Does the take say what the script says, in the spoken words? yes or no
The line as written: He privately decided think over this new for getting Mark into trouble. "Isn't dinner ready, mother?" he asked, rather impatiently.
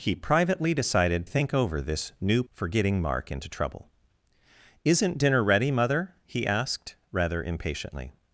yes